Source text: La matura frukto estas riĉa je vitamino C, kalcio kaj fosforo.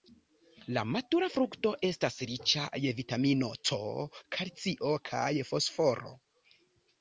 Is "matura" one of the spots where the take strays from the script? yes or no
no